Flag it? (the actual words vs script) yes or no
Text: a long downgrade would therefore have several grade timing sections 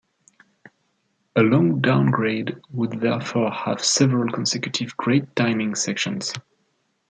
yes